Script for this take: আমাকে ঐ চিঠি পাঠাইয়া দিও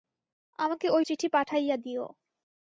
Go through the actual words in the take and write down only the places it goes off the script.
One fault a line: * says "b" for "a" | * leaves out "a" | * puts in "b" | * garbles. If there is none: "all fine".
all fine